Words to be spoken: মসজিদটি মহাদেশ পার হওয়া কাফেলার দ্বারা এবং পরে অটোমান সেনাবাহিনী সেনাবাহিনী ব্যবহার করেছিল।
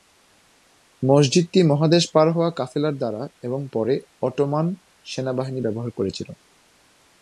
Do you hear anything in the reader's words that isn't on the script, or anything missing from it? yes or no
yes